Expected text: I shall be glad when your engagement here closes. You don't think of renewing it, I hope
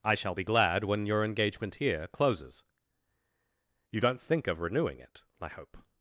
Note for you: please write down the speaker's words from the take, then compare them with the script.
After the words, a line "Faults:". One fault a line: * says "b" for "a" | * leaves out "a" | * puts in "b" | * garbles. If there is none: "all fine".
I shall be glad when your engagement here closes. You don't think of renewing it, I hope
Faults:
all fine